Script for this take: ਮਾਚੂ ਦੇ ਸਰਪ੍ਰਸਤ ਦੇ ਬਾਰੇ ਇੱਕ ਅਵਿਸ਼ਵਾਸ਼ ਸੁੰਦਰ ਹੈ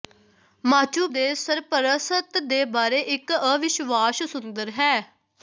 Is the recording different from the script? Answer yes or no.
no